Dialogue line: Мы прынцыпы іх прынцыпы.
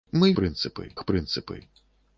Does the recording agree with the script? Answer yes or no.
yes